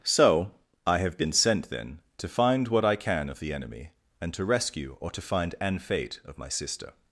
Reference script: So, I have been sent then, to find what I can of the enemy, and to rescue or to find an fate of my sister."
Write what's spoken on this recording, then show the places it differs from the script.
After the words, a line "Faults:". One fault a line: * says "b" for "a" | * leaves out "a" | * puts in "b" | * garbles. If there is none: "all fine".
So, I have been sent then, to find what I can of the enemy, and to rescue or to find an fate of my sister."
Faults:
all fine